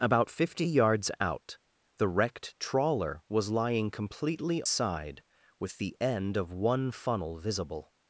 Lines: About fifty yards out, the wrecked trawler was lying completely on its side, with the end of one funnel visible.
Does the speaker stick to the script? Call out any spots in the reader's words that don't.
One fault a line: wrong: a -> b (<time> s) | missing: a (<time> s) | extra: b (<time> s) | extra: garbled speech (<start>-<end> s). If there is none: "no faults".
missing: on its (4.6 s)